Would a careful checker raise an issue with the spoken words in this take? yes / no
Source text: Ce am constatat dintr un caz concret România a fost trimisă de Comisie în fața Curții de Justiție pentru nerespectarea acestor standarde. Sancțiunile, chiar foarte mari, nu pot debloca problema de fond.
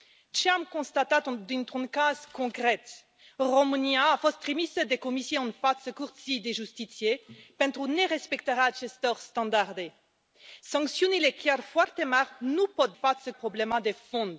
yes